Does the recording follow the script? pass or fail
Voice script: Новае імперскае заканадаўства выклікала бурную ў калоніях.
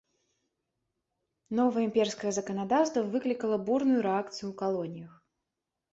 fail